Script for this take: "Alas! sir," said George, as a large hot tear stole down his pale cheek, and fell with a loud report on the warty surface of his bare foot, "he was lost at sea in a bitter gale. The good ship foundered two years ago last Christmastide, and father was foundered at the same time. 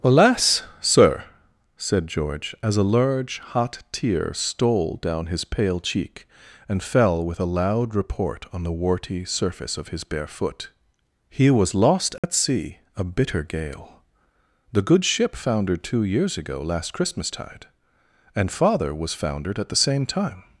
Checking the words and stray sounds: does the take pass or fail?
fail